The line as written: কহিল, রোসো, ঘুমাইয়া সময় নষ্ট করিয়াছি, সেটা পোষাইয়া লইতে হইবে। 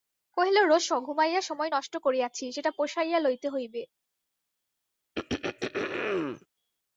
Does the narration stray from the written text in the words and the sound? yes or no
yes